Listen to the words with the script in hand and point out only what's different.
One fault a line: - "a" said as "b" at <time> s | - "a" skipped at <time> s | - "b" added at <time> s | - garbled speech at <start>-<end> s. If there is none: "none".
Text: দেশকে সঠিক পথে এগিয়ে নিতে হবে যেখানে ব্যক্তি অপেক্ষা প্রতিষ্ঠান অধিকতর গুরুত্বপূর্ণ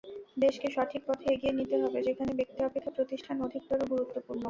none